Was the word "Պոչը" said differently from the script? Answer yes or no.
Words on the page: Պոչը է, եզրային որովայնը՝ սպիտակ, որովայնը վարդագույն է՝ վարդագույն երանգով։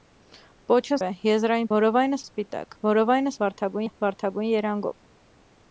no